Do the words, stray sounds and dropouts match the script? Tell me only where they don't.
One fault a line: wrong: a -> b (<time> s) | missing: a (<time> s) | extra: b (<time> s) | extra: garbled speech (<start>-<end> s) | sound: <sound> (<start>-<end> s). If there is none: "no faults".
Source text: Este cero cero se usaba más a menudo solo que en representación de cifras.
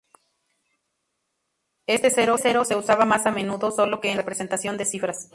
no faults